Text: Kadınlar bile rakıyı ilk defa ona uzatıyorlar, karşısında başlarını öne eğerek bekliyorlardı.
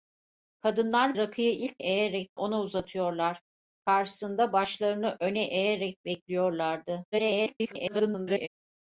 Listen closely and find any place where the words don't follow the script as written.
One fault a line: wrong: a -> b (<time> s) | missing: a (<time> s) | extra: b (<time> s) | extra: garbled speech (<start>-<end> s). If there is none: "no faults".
missing: bile (1.2 s)
wrong: defa -> eğerek (1.8 s)
extra: garbled speech (7.1-8.5 s)